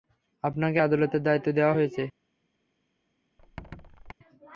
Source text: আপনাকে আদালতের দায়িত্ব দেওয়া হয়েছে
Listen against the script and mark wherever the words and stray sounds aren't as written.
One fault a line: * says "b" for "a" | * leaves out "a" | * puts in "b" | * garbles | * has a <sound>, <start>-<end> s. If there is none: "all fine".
* has a squeak, 3.4-4.1 s